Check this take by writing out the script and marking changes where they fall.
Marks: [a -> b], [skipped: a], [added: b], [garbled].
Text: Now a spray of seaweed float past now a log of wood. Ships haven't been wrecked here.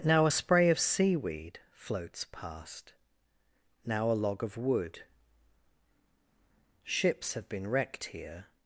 Now a spray of seaweed [float -> floats] past now a log of wood. Ships [haven't -> have] been wrecked here.